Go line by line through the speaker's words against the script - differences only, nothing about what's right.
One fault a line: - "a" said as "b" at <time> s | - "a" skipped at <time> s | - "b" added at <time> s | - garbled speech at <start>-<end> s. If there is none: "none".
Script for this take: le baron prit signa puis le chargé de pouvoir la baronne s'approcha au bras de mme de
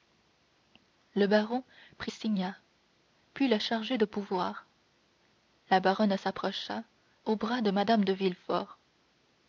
none